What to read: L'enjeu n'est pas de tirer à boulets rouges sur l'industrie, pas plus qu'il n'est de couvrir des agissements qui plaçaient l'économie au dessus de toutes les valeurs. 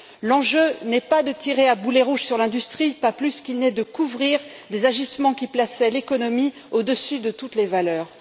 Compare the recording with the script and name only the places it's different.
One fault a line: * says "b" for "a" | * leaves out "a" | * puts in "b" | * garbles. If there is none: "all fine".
all fine